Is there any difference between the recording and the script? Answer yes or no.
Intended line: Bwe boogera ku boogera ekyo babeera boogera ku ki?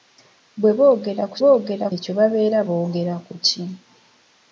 no